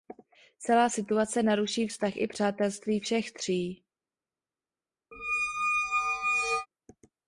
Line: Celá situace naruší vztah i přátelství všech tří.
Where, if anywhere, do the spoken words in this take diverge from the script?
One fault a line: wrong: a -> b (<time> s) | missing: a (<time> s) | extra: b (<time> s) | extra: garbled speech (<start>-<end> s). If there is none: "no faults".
no faults